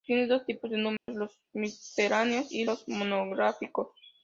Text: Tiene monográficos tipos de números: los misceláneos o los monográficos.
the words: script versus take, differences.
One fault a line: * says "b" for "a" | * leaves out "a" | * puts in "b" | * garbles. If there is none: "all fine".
* says "dos" for "monográficos"
* says "y" for "o"